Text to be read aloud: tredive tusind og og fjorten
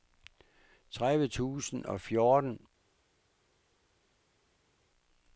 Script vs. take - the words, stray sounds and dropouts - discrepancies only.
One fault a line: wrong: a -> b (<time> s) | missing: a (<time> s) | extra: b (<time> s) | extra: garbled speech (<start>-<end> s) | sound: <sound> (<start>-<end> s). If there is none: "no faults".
missing: og (2.0 s)